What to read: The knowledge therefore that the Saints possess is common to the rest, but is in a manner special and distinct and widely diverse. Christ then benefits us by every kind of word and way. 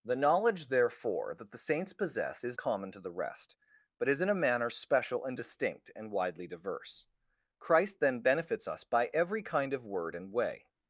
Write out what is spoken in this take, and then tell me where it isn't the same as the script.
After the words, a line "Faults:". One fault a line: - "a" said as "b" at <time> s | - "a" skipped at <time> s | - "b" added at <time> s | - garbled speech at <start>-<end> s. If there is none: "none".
The knowledge therefore that the Saints possess is common to the rest, but is in a manner special and distinct and widely diverse. Christ then benefits us by every kind of word and way.
Faults:
none